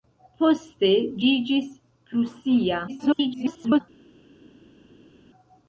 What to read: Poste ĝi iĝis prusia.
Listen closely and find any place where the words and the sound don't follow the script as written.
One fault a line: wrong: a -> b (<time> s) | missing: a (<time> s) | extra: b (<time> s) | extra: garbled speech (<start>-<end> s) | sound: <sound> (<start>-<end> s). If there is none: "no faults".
missing: ĝi (0.9 s)
extra: garbled speech (2.9-3.8 s)